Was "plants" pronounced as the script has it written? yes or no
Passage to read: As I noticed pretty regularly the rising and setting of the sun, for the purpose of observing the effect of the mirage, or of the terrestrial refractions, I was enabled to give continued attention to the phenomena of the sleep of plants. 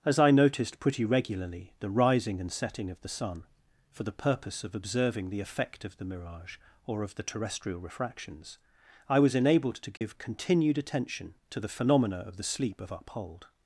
no